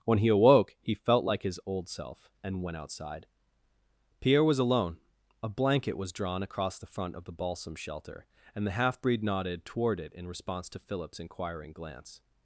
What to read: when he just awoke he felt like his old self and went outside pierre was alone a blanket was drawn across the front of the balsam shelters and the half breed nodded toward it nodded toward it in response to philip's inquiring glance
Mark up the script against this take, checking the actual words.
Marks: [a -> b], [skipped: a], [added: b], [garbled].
when he [skipped: just] awoke he felt like his old self and went outside pierre was alone a blanket was drawn across the front of the balsam [shelters -> shelter] and the half breed nodded toward it [skipped: nodded toward it] in response to philip's inquiring glance